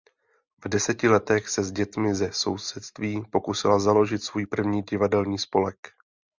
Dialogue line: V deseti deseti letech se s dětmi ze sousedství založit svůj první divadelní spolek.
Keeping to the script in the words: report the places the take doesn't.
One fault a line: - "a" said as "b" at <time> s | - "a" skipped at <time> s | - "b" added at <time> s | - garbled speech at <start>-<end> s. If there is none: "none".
- "deseti" skipped at 1.1 s
- "pokusila" added at 3.3 s